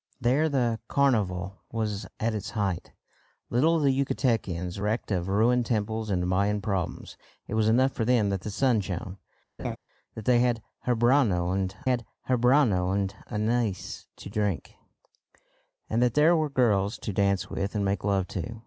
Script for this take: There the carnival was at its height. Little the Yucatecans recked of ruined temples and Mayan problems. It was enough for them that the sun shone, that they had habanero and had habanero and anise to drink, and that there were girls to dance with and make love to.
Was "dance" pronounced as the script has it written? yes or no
yes